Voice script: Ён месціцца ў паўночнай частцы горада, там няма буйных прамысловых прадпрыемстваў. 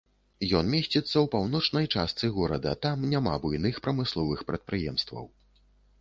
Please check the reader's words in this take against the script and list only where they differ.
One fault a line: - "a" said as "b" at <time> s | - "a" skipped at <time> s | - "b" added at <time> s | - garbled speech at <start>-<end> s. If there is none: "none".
none